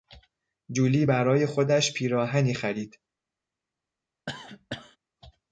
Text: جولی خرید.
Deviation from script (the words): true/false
true